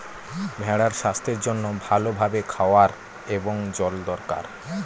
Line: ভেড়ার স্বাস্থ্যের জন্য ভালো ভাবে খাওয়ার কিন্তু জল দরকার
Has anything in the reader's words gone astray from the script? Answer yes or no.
yes